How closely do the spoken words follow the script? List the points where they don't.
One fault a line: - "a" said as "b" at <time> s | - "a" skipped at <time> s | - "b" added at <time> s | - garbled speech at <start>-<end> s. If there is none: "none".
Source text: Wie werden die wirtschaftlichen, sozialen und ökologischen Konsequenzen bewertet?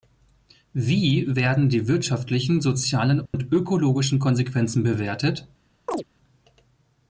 none